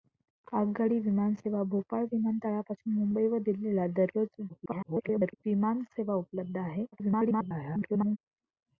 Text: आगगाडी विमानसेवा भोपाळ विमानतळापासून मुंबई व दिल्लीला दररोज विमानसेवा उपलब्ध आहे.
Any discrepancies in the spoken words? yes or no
yes